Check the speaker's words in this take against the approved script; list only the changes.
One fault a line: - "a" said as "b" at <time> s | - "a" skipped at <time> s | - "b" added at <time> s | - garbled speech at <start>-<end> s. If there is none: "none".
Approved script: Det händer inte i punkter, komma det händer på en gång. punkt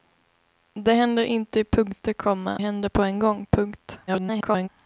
- "det" skipped at 2.6 s
- garbled speech at 4.1-4.7 s